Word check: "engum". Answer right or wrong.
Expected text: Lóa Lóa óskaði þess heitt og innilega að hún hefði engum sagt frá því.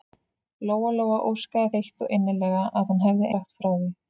wrong